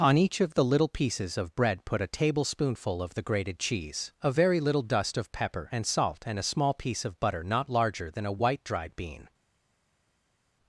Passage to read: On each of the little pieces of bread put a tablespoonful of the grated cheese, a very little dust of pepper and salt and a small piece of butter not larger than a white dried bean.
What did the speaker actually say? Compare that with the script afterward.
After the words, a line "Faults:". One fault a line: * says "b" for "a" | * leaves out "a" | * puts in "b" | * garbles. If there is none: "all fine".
On each of the little pieces of bread put a tablespoonful of the grated cheese, a very little dust of pepper and salt and a small piece of butter not larger than a white dried bean.
Faults:
all fine